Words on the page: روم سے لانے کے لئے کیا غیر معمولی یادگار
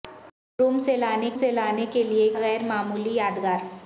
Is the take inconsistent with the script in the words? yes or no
yes